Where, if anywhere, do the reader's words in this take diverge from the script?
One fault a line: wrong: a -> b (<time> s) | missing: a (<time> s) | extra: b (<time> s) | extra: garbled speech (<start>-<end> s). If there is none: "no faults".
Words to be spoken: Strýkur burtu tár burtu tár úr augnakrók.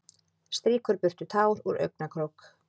missing: burtu tár (1.6 s)